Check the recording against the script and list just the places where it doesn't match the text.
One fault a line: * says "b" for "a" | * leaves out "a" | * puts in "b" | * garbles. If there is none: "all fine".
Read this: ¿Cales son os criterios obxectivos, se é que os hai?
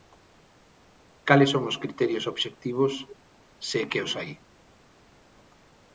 all fine